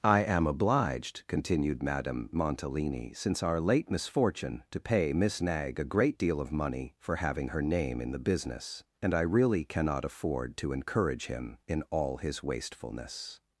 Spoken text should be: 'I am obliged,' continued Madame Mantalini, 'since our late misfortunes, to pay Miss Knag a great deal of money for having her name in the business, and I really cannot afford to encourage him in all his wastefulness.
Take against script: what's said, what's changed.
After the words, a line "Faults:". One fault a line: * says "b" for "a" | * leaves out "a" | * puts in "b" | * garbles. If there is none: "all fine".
'I am obliged,' continued Madame Mantalini, 'since our late misfortune, to pay Miss Knag a great deal of money for having her name in the business, and I really cannot afford to encourage him in all his wastefulness.
Faults:
* says "misfortune" for "misfortunes"